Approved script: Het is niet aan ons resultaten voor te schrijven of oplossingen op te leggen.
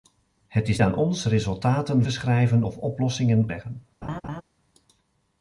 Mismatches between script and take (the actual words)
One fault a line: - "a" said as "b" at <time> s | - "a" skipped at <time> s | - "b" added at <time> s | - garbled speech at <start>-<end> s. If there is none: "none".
- "niet" skipped at 0.8 s
- "voor" skipped at 2.1 s
- "op te" skipped at 3.4 s